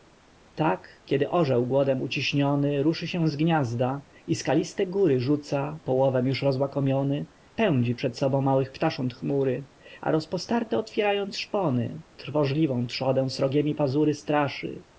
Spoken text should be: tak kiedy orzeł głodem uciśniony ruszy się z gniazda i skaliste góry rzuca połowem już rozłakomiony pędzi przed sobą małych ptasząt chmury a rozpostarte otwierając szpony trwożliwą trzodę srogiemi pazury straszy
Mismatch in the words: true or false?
false